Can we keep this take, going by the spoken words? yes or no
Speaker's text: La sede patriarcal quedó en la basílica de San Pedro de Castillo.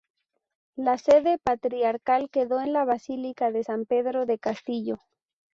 yes